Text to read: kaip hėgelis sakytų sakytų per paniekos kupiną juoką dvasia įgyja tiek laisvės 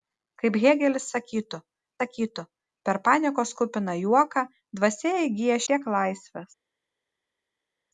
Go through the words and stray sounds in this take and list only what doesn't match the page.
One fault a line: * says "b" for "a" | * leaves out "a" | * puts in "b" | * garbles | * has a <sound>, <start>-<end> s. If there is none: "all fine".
all fine